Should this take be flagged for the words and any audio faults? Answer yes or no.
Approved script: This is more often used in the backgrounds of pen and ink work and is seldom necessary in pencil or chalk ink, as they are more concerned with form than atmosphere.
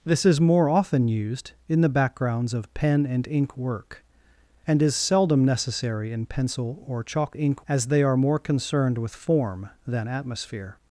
no